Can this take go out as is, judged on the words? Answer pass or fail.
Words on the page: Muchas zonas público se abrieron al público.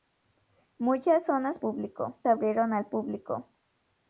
pass